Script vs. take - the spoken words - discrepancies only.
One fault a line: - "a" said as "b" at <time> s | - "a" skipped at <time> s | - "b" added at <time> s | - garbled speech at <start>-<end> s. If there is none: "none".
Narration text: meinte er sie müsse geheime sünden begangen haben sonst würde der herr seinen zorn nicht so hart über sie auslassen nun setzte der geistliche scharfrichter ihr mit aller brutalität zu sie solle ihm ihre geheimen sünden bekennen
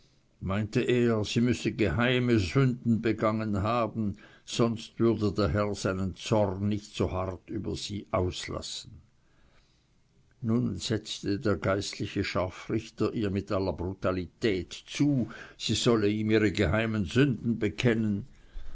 none